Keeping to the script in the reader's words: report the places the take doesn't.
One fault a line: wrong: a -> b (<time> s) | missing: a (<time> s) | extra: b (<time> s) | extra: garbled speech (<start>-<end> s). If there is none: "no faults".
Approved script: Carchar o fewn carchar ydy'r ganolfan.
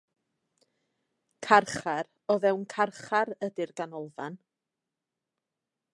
no faults